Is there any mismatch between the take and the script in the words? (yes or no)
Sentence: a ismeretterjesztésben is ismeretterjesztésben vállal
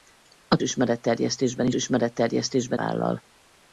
no